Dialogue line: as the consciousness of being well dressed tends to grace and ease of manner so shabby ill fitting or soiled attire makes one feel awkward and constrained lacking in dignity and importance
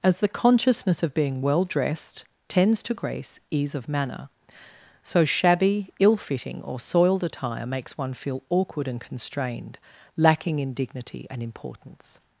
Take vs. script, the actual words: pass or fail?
fail